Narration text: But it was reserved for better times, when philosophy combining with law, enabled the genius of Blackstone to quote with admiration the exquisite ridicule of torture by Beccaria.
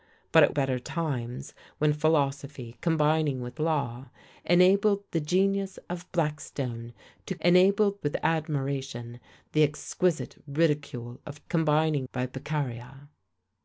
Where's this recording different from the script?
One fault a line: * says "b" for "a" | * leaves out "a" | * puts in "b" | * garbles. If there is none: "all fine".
* leaves out "was reserved for"
* says "enabled" for "quote"
* says "combining" for "torture"